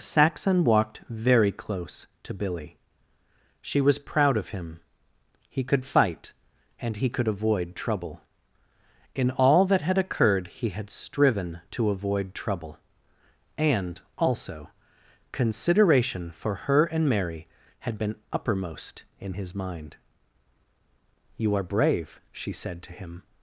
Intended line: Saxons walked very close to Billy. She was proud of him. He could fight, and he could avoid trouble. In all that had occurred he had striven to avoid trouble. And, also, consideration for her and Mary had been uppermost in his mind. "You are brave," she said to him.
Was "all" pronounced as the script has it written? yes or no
yes